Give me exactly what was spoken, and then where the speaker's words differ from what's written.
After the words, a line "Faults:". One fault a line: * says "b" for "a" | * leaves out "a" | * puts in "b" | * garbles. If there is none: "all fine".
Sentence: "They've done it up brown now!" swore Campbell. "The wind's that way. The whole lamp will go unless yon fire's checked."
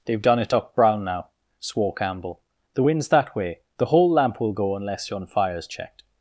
"They've done it up brown now!" swore Campbell. "The wind's that way. The whole lamp will go unless yon fire's checked."
Faults:
all fine